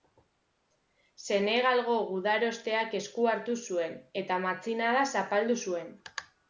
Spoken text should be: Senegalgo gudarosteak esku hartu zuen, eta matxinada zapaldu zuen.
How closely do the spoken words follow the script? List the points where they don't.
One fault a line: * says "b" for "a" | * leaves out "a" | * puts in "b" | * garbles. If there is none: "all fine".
all fine